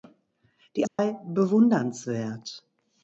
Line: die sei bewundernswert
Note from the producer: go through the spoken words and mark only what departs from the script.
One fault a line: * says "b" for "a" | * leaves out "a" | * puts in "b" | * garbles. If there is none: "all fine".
all fine